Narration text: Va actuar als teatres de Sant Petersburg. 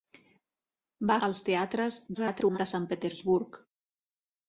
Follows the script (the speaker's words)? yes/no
no